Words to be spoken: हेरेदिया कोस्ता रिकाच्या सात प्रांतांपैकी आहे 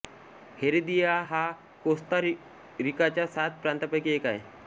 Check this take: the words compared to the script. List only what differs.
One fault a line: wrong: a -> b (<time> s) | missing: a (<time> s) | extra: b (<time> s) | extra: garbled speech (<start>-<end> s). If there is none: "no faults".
extra: हा (1.3 s)
extra: एक (4.1 s)